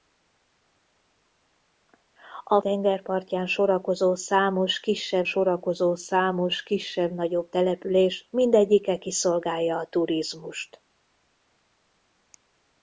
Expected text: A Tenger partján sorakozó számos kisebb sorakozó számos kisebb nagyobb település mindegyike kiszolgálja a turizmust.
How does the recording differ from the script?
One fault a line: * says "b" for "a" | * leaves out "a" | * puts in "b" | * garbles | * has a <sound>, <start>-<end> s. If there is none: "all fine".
all fine